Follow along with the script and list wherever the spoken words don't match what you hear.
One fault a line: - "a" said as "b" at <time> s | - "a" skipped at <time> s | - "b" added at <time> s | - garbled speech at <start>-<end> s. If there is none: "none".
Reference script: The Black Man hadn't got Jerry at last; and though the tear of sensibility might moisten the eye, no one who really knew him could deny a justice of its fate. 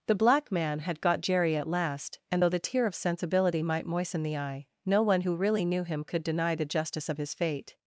- "hadn't" said as "had" at 0.8 s
- "a" said as "the" at 6.5 s
- "its" said as "his" at 7.2 s